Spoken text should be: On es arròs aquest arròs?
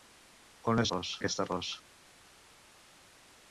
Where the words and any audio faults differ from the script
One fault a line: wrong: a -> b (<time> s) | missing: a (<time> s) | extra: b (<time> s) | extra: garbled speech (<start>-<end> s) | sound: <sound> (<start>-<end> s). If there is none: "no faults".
no faults